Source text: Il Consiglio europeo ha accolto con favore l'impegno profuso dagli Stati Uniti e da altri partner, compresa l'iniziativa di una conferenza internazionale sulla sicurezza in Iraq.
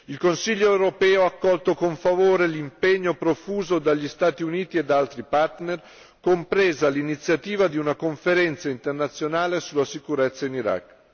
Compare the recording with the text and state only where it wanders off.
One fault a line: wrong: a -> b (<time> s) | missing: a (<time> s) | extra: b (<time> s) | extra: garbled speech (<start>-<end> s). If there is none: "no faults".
no faults